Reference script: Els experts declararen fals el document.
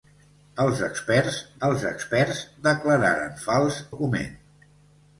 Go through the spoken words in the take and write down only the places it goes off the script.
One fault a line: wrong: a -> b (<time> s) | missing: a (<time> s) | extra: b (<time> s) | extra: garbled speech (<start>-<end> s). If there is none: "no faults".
extra: els experts (1.7 s)
missing: el (3.8 s)